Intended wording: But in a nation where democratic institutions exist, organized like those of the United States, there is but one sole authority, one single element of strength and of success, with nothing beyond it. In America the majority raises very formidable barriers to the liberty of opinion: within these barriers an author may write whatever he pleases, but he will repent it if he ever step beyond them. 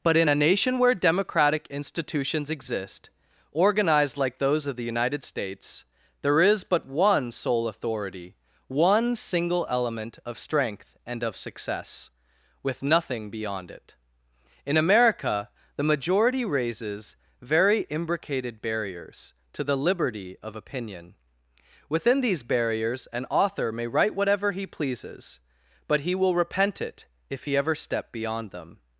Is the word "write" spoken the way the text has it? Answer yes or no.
yes